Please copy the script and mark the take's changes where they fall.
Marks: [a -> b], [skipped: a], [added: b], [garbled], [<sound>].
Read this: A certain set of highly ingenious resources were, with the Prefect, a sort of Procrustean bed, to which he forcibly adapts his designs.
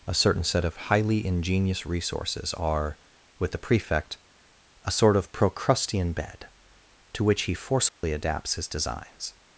A certain set of highly ingenious resources [were, -> are] with the Prefect, a sort of Procrustean bed, to which he forcibly [dropout] adapts his designs.